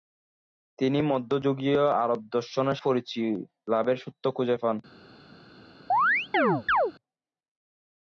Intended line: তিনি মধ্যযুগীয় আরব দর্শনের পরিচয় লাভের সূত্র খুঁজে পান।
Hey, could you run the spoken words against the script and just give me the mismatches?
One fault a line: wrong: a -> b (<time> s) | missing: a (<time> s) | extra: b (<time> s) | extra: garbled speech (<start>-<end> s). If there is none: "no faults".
no faults